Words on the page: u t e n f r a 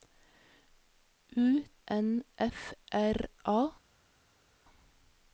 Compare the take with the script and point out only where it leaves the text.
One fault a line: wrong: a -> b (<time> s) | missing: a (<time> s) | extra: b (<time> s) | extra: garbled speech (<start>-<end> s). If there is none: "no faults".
missing: t e (1.6 s)